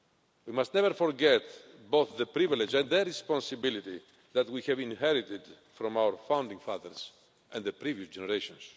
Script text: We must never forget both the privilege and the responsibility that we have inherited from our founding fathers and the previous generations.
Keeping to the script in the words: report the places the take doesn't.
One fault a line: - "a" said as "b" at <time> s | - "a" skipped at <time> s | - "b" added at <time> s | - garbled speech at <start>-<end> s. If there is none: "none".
none